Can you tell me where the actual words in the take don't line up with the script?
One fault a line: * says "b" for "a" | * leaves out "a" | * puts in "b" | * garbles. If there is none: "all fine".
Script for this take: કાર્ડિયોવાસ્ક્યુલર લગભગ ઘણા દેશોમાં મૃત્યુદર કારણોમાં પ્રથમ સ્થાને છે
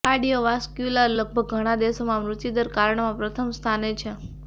all fine